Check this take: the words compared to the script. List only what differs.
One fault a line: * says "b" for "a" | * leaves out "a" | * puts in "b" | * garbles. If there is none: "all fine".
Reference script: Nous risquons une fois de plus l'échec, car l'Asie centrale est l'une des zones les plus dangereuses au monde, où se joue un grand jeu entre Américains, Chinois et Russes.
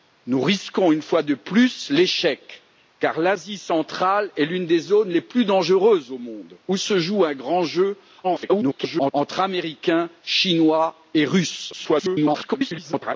* garbles
* garbles